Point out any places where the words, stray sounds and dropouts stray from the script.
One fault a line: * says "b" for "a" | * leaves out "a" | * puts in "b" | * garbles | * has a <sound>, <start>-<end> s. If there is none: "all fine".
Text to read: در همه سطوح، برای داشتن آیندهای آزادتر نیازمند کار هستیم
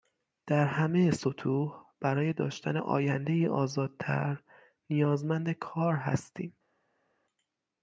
all fine